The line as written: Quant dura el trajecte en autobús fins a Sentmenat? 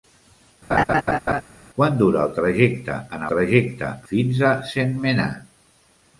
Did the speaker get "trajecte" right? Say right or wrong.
right